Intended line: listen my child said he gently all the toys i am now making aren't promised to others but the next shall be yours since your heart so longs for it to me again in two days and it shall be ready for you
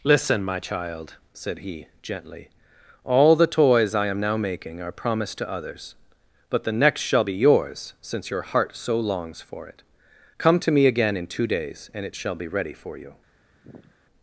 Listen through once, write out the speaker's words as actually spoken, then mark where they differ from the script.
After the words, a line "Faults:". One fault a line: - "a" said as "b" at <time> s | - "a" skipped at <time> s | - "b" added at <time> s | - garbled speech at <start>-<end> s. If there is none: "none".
listen my child said he gently all the toys i am now making are promised to others but the next shall be yours since your heart so longs for it come to me again in two days and it shall be ready for you
Faults:
- "aren't" said as "are" at 4.8 s
- "come" added at 10.4 s